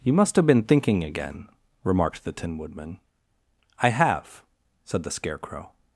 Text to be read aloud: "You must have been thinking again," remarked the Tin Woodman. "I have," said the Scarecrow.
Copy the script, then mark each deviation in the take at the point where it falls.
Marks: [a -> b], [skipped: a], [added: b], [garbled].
"You must have been thinking again," remarked the Tin Woodman. "I have," said the Scarecrow.